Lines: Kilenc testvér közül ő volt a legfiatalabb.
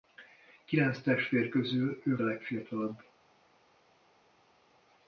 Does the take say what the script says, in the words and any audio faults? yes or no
no